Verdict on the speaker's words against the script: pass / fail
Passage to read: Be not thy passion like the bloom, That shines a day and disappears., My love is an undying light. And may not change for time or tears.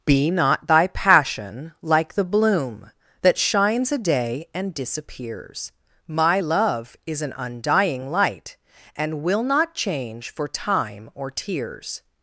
fail